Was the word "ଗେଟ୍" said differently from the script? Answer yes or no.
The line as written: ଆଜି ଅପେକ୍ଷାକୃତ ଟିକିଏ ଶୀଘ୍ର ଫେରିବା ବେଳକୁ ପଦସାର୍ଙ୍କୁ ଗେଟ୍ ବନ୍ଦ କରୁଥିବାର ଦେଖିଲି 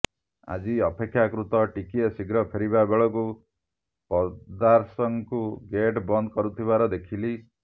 no